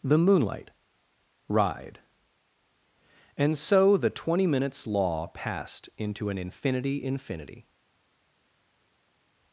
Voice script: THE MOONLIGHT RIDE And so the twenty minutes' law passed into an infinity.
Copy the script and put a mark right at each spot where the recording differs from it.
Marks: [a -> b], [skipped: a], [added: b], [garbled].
THE MOONLIGHT RIDE And so the twenty minutes' law passed into an infinity. [added: infinity]